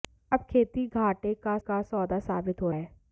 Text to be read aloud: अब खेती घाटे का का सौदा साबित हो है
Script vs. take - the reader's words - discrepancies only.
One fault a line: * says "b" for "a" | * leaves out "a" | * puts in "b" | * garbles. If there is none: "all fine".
all fine